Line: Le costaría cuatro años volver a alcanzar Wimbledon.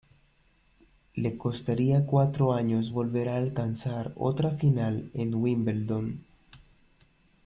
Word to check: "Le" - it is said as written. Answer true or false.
true